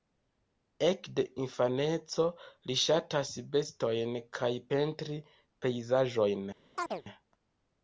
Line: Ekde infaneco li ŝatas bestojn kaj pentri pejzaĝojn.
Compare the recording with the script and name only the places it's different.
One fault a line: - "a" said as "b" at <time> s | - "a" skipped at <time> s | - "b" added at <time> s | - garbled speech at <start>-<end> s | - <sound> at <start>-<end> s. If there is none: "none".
- chirp at 6.7-7.0 s